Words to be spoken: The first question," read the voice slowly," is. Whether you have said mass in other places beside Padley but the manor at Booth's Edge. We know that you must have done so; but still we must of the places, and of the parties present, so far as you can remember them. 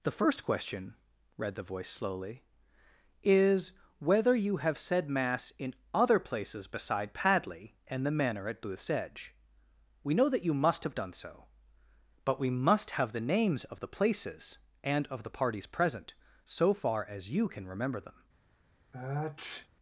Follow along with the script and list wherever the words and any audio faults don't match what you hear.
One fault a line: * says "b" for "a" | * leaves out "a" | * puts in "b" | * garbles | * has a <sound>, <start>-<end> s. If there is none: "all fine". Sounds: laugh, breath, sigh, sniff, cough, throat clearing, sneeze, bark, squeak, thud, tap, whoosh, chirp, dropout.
* says "and" for "but"
* leaves out "still"
* puts in "have the names"
* has a sniff, 18.9-19.7 s